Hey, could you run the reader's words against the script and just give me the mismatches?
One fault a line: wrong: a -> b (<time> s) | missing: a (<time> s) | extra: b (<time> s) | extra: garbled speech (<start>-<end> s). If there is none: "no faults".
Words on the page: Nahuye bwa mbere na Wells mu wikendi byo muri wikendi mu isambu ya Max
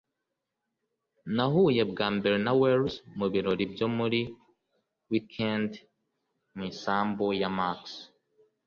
wrong: wikendi -> birori (3.3 s)